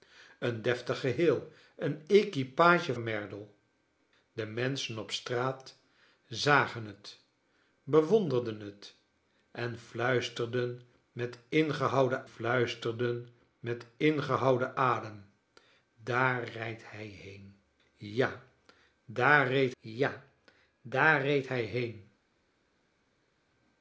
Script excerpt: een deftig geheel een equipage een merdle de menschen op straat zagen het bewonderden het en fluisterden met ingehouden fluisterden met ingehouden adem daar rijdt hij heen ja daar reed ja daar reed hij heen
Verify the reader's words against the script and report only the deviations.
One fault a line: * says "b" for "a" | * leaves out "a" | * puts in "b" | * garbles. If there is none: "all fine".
all fine